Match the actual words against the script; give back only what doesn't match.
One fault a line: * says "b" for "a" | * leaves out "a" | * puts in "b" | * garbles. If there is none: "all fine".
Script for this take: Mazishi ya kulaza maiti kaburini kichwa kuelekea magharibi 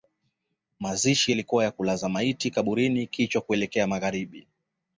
* puts in "yalikuwa"